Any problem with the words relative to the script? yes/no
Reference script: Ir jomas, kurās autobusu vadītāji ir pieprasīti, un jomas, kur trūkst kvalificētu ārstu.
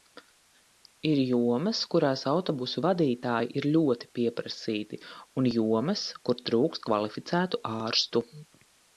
yes